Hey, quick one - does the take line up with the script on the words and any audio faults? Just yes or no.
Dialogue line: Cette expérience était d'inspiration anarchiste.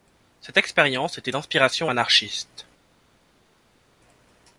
yes